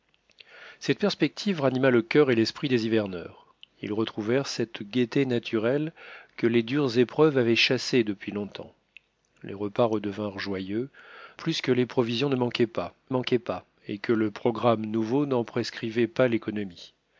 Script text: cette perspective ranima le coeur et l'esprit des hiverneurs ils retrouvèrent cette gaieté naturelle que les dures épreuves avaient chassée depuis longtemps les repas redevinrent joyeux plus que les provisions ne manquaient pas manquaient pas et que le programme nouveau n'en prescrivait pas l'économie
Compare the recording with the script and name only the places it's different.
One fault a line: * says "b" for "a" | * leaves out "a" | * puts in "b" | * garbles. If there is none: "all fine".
all fine